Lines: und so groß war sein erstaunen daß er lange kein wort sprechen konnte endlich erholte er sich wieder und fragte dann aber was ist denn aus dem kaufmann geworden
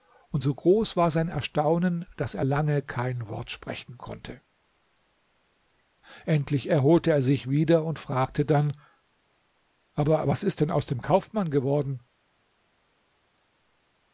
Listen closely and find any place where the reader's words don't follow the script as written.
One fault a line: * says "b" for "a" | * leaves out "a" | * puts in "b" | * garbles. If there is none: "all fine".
all fine